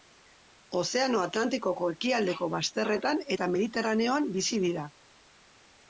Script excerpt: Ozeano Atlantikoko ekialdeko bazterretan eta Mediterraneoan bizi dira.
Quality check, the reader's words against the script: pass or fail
pass